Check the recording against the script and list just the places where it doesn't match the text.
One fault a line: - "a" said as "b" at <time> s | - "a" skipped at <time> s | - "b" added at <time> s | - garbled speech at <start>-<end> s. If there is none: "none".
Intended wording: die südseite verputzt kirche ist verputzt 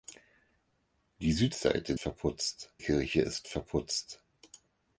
none